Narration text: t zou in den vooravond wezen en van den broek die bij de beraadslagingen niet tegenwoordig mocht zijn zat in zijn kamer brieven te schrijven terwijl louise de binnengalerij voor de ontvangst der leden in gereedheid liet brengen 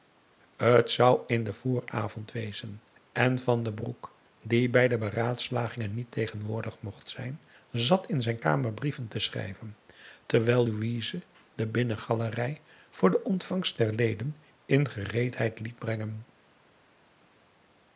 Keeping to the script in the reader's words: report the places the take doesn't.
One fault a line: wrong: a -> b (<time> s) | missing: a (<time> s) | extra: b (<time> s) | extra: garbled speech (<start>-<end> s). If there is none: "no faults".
no faults